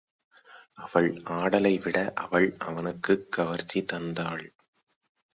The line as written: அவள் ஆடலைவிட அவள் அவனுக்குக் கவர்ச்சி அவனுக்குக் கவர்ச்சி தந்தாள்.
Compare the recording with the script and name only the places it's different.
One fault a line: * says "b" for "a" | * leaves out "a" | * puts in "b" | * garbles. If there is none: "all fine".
* leaves out "அவனுக்குக் கவர்ச்சி"